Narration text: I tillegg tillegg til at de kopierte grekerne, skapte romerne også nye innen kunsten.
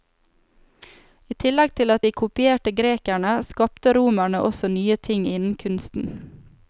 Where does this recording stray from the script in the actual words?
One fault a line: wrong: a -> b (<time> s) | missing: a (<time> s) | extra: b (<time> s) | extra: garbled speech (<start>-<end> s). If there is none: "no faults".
missing: tillegg (1.8 s)
extra: ting (5.1 s)